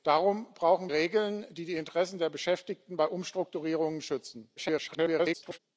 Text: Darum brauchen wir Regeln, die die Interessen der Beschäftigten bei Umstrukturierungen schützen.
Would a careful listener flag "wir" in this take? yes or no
yes